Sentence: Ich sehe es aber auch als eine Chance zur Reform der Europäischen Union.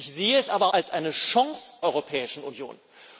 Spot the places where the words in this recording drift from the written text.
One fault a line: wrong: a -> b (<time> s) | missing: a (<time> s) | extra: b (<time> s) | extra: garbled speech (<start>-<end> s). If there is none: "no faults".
missing: auch (0.7 s)
missing: zur Reform der (1.8 s)